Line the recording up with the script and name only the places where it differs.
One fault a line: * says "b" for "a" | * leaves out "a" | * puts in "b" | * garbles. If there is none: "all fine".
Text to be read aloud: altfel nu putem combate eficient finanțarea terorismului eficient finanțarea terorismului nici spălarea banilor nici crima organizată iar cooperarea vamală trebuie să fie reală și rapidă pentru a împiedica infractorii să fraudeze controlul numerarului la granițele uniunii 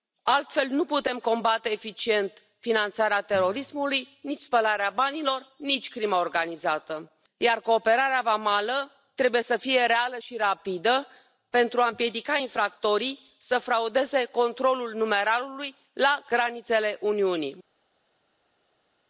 * leaves out "eficient finanțarea terorismului"